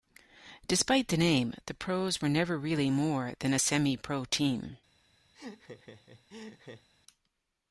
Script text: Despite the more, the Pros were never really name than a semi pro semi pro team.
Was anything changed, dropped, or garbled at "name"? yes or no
yes